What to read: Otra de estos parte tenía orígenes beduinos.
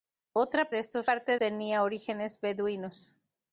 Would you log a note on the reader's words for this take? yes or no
no